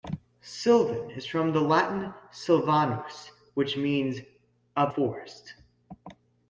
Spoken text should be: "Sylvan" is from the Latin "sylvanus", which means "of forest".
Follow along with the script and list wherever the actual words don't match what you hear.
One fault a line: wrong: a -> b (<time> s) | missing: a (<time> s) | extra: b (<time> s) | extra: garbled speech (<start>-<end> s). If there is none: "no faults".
no faults